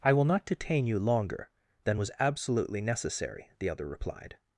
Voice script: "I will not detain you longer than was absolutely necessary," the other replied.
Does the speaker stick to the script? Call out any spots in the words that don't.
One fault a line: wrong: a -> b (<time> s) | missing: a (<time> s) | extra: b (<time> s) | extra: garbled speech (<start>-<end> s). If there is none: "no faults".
no faults